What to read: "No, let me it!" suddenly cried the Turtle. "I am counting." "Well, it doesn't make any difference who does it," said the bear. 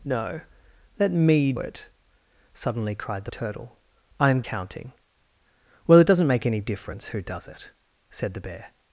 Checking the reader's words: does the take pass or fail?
pass